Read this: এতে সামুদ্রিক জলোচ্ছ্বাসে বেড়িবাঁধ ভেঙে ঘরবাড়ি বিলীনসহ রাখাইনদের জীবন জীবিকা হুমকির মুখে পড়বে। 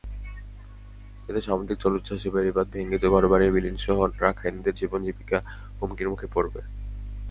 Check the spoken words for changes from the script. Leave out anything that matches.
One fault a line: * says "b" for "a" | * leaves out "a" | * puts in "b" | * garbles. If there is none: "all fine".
all fine